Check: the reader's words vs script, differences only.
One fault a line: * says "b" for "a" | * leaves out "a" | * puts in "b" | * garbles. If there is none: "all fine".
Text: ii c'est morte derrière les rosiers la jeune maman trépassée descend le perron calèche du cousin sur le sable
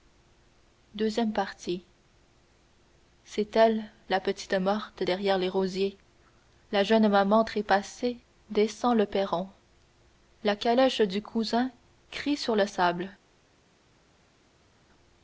* puts in "elle la petite"
* puts in "la"
* puts in "crie"